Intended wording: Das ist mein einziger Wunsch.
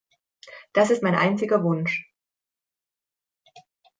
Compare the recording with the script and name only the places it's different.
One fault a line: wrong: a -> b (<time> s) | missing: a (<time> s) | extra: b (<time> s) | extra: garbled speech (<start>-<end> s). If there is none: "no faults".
no faults